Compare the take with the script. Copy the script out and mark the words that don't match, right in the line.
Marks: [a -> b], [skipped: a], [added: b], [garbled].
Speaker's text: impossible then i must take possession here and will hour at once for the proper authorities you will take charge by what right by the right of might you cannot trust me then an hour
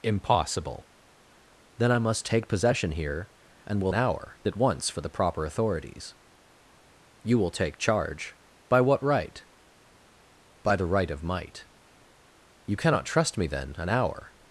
impossible then i must take possession here and will hour at once for the proper authorities you will take charge by what right by the right of might you cannot trust me then an hour